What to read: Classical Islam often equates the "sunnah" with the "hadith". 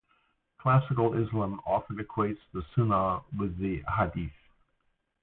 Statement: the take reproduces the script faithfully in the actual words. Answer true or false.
true